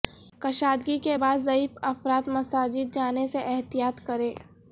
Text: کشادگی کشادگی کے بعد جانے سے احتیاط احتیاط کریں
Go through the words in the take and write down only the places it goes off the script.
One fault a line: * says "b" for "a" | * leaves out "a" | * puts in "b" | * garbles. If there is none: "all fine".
* leaves out "کشادگی"
* puts in "ضعیف افراد مساجد"
* leaves out "احتیاط"